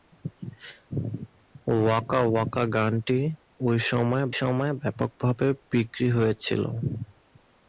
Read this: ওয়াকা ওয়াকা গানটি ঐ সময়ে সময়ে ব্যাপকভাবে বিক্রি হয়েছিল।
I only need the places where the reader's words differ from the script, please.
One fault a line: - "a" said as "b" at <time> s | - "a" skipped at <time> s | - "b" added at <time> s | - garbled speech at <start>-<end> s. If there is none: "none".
none